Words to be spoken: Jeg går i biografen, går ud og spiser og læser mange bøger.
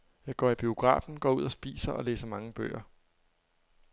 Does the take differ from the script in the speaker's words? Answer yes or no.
no